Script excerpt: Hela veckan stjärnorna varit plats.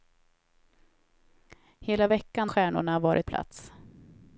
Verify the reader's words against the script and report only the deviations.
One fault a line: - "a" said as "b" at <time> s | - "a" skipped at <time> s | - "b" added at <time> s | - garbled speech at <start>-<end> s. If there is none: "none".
none